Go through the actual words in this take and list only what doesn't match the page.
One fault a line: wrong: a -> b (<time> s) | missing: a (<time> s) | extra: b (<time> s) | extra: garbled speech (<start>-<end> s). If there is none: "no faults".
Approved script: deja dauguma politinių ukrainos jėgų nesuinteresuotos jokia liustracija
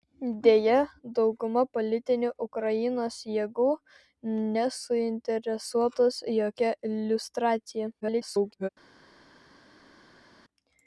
extra: garbled speech (8.0-8.7 s)